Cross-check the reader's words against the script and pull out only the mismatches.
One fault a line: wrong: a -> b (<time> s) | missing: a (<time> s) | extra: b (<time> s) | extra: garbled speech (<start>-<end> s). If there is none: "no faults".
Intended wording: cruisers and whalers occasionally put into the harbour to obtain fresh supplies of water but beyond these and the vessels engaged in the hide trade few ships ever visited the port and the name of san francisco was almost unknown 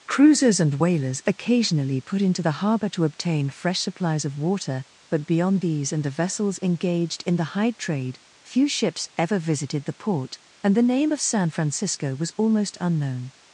no faults